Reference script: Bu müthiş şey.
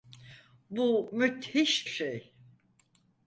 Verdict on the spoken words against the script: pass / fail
pass